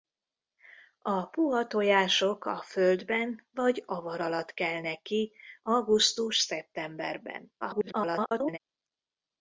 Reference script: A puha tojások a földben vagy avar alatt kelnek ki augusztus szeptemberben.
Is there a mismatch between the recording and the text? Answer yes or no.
yes